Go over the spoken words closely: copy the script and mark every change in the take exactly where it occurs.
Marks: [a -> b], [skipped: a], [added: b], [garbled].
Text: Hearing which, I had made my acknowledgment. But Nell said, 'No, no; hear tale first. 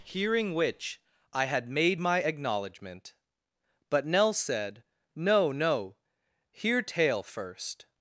Hearing which, I had made my acknowledgment. But Nell said, 'No, no; hear tale first.